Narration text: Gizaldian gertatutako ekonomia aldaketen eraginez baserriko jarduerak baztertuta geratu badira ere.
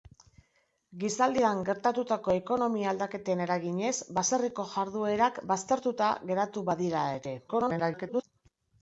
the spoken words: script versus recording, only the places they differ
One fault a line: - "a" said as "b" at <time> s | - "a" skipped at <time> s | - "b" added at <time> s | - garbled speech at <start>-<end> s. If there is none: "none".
- garbled speech at 7.5-8.2 s